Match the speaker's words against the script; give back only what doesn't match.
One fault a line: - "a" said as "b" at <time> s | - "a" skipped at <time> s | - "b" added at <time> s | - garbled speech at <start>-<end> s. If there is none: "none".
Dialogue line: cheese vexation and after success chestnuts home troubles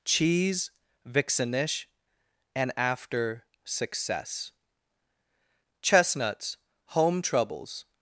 - "vexation" said as "vixenish" at 1.1 s